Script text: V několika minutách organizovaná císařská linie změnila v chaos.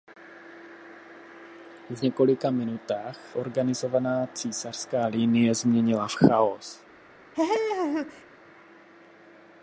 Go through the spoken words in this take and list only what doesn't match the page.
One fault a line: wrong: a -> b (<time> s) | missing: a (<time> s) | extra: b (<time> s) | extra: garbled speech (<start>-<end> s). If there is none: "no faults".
no faults